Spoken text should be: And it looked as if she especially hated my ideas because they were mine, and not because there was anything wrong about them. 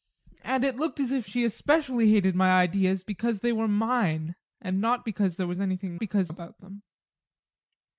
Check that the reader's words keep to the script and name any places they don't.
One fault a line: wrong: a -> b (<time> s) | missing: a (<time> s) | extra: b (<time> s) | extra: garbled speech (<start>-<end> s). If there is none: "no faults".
wrong: wrong -> because (6.0 s)